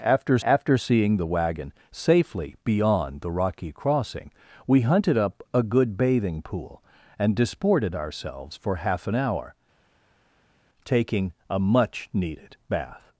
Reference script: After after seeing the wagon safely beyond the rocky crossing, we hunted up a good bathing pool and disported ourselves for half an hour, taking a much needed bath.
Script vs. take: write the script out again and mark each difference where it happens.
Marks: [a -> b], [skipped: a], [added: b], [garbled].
After after seeing the wagon safely beyond the rocky crossing, we hunted up a good bathing pool and disported ourselves for half an hour, taking a much needed bath.